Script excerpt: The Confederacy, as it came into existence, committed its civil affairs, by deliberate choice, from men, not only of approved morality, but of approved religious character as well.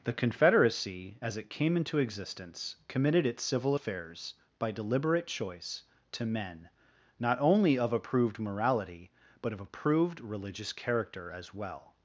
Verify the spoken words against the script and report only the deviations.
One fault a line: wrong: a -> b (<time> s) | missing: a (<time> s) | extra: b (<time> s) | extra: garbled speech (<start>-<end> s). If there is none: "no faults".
wrong: from -> to (6.1 s)